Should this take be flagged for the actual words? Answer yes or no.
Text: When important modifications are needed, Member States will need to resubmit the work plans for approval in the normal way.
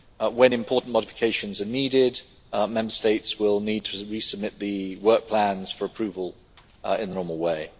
no